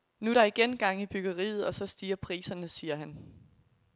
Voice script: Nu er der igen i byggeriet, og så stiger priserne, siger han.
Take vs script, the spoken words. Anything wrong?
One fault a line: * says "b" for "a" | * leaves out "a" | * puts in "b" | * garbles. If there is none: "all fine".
* puts in "gang"